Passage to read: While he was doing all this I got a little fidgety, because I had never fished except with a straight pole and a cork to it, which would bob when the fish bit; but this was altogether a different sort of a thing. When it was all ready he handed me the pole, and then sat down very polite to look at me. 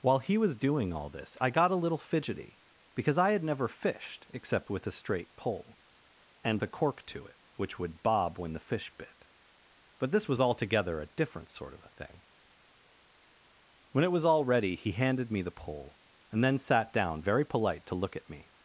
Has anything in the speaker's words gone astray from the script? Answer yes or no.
no